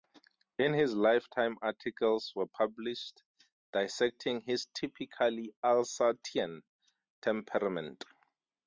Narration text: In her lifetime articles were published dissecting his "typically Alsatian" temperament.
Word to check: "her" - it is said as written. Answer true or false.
false